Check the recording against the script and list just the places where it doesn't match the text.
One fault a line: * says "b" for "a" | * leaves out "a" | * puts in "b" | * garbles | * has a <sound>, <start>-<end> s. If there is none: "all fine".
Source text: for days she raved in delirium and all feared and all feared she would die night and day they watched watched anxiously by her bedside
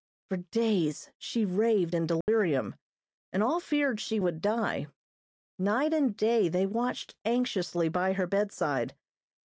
* has a dropout, 2.2-2.3 s
* leaves out "and all feared"
* leaves out "watched"